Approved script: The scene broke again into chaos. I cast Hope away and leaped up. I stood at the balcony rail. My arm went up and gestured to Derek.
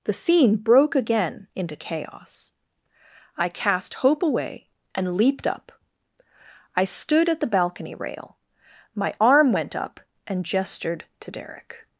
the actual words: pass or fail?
pass